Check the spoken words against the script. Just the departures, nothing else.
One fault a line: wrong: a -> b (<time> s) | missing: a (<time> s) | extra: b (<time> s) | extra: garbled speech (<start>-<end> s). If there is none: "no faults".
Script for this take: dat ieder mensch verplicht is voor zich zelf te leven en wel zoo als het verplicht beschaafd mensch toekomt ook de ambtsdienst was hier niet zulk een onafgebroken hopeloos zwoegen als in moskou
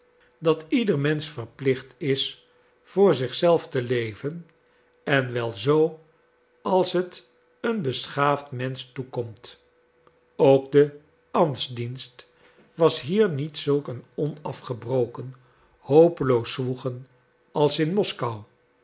wrong: verplicht -> een (7.6 s)